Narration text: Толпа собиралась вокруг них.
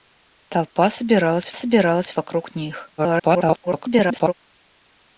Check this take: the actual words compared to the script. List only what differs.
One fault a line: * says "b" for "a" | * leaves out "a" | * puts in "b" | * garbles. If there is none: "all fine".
* puts in "собиралась"
* garbles